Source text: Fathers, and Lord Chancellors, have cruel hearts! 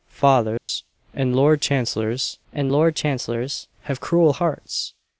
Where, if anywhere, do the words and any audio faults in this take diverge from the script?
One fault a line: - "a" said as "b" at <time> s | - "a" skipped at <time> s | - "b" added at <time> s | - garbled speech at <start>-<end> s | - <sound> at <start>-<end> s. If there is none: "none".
- dropout at 0.6-0.7 s
- "and Lord Chancellors" added at 2.5 s